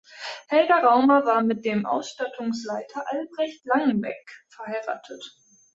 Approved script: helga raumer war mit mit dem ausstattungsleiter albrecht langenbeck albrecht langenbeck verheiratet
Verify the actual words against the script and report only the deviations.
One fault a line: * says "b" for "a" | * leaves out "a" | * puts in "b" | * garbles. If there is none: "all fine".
* leaves out "mit"
* leaves out "albrecht langenbeck"